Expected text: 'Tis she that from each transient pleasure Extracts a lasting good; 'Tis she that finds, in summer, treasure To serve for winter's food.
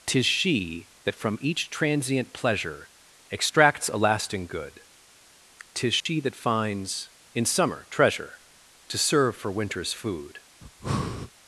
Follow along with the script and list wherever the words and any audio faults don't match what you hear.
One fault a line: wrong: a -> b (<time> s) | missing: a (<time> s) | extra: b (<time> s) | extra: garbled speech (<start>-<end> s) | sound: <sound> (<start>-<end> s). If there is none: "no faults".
sound: dropout (6.0-6.1 s)
sound: breath (10.6-11.3 s)